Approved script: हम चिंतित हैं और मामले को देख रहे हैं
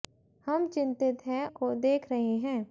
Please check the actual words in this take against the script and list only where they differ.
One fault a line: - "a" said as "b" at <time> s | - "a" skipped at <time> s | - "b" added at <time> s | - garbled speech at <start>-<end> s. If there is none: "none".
- "और मामले" skipped at 1.4 s